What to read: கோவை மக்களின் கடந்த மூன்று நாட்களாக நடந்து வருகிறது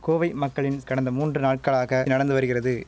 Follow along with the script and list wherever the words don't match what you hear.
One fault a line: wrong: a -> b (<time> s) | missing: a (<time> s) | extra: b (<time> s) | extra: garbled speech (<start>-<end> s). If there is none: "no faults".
no faults